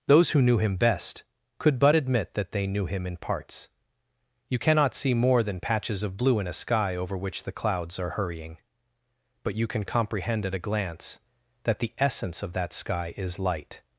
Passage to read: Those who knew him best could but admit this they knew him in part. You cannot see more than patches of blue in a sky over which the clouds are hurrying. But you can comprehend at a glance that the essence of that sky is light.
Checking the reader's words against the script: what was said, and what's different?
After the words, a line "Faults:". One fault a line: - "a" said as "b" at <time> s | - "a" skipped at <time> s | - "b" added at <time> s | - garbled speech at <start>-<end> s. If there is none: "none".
Those who knew him best could but admit that they knew him in parts. You cannot see more than patches of blue in a sky over which the clouds are hurrying. But you can comprehend at a glance that the essence of that sky is light.
Faults:
- "this" said as "that" at 2.3 s
- "part" said as "parts" at 3.2 s